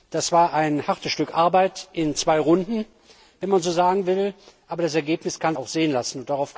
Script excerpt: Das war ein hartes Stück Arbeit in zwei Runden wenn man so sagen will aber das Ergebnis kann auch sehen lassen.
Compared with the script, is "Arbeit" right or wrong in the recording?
right